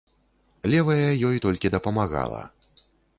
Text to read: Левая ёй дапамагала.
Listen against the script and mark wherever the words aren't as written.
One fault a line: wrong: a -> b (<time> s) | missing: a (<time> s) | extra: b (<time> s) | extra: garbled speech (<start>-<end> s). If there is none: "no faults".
extra: толькі (1.4 s)